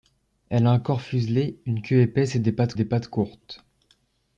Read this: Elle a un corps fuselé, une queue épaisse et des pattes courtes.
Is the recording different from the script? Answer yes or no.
yes